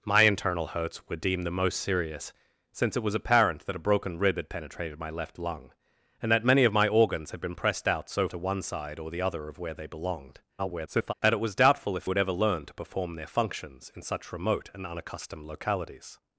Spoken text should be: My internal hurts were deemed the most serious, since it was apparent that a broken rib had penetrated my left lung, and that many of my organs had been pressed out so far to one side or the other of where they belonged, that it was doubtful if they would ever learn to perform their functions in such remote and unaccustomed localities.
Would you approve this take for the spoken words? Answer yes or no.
no